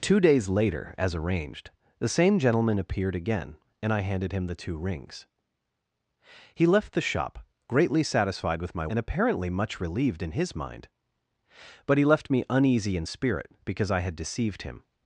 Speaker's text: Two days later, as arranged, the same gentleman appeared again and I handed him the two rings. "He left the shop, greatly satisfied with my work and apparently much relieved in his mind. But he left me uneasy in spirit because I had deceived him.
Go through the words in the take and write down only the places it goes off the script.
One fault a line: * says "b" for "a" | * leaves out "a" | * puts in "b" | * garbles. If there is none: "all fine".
* leaves out "work"